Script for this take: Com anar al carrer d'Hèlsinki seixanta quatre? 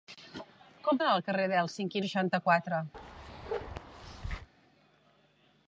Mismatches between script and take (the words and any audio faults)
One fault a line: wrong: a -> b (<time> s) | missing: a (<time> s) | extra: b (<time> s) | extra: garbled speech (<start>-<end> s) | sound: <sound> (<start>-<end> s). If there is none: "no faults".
sound: bark (2.9-4.5 s)